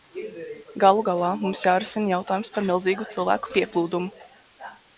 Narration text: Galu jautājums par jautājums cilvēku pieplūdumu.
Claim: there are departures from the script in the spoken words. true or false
true